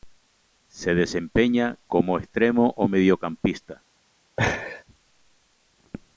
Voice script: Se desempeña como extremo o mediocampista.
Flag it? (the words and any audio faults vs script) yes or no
yes